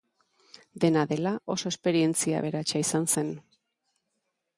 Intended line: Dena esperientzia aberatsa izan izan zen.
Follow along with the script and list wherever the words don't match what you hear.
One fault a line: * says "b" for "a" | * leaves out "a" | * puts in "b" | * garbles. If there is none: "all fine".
* puts in "dela oso"
* leaves out "izan"